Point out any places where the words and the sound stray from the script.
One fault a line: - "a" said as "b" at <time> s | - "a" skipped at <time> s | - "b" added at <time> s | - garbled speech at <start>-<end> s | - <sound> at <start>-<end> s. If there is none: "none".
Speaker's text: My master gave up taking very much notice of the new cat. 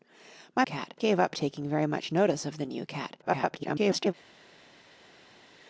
- "master" said as "cat" at 0.6 s
- garbled speech at 3.2-4.1 s